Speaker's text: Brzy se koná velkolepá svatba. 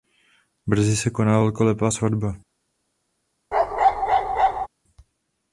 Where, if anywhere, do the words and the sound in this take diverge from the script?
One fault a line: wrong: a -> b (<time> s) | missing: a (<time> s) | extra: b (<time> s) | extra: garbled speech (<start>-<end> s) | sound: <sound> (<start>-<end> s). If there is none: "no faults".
sound: bark (3.5-4.7 s)